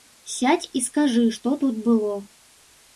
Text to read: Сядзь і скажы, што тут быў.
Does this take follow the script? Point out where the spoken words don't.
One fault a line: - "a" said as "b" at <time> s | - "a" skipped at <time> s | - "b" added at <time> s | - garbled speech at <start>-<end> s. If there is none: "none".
- "быў" said as "было" at 1.9 s